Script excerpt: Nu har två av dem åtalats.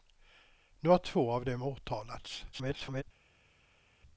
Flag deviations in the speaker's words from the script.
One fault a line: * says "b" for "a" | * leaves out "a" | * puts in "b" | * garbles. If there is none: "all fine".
* garbles